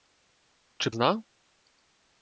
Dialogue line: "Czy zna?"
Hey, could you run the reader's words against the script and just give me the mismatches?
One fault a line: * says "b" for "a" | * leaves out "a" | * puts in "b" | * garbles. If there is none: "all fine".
all fine